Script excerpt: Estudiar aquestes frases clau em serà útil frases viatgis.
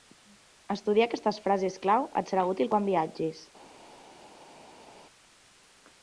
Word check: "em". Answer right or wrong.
wrong